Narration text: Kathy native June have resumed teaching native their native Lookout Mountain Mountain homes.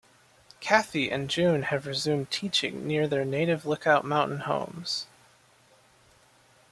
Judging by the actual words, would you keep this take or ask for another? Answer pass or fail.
fail